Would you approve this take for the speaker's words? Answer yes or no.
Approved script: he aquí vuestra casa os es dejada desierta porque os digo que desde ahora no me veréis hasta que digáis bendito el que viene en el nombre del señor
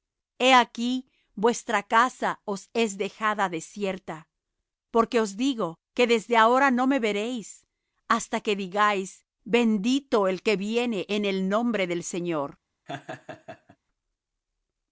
yes